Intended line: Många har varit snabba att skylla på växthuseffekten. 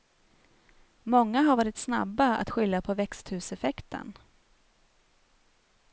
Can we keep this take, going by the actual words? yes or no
yes